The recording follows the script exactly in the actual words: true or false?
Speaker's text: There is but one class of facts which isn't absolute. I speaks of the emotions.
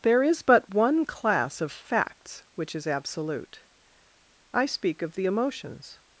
false